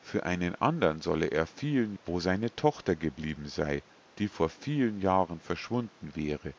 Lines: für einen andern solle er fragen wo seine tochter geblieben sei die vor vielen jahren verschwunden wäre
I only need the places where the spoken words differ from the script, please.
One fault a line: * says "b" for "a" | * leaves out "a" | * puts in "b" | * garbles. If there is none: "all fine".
* says "vielen" for "fragen"